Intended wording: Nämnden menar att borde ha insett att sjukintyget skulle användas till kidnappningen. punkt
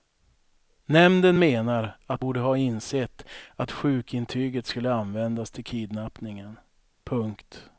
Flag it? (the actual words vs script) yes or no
no